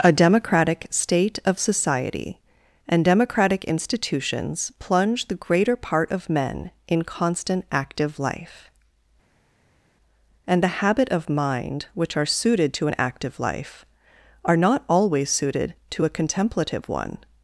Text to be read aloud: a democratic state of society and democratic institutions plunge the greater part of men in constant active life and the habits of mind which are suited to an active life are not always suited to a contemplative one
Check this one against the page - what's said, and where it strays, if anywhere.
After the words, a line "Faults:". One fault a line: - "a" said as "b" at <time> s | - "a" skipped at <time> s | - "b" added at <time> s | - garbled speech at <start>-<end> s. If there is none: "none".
a democratic state of society and democratic institutions plunge the greater part of men in constant active life and the habit of mind which are suited to an active life are not always suited to a contemplative one
Faults:
- "habits" said as "habit" at 10.8 s